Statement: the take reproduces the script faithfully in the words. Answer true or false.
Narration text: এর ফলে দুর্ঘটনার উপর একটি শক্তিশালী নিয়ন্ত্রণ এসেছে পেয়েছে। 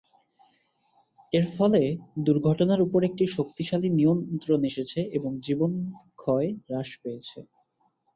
false